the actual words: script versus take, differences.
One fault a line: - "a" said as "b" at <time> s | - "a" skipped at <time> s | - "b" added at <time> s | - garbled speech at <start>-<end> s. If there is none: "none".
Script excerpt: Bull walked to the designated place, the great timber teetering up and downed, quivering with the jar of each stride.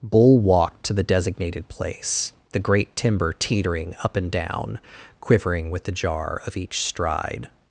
- "downed" said as "down" at 4.3 s